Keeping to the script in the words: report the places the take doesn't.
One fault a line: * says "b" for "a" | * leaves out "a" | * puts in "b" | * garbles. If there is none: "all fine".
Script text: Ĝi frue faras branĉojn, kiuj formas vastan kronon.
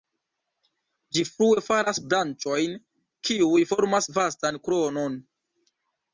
all fine